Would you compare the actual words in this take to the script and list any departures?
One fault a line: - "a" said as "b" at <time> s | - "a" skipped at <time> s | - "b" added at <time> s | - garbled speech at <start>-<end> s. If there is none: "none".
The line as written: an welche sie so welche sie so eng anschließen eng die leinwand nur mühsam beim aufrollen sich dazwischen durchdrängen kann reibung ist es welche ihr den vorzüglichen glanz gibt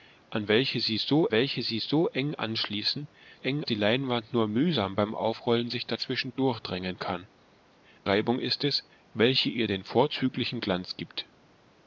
none